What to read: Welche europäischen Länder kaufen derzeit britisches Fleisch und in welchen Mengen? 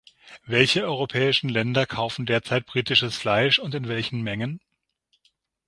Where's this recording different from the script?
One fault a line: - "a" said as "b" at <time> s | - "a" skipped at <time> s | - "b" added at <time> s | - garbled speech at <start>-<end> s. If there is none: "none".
none